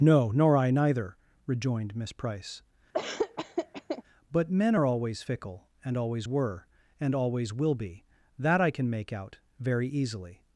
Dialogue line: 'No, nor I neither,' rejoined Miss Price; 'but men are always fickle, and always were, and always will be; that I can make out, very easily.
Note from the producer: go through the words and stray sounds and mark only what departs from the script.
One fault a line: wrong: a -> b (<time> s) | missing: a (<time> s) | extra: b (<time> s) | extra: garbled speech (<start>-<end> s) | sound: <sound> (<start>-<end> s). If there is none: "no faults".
sound: laugh (2.9-4.0 s)